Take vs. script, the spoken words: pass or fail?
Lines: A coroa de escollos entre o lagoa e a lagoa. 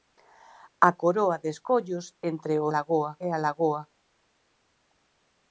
pass